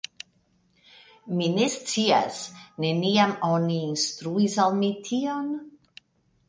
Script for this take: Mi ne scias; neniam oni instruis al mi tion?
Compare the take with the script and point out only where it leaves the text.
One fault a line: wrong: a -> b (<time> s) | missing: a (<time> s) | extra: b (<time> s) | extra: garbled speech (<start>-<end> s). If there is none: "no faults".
no faults